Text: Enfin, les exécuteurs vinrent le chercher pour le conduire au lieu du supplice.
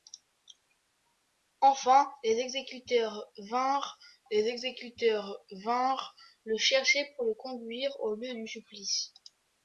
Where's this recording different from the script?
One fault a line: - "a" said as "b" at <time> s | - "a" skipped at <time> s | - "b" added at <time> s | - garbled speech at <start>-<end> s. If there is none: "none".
- "les exécuteurs vinrent" added at 4.3 s